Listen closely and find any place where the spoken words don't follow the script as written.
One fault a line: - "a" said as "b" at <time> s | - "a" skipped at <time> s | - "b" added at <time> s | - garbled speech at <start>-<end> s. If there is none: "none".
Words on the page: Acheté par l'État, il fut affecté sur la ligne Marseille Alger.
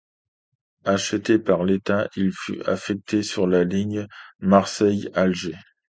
none